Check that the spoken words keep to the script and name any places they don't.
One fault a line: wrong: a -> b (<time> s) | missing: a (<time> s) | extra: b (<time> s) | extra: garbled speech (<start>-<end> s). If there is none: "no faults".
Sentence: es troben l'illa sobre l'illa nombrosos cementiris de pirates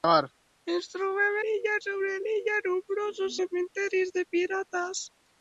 no faults